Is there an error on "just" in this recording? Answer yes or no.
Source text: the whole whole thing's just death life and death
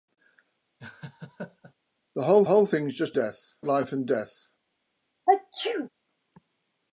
no